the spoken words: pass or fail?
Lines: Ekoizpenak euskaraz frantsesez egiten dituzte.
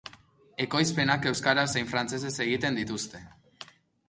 fail